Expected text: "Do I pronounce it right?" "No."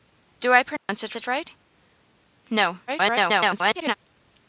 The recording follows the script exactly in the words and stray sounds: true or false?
false